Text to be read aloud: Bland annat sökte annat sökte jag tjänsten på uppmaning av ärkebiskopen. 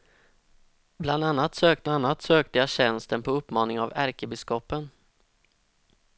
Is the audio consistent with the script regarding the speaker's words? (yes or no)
yes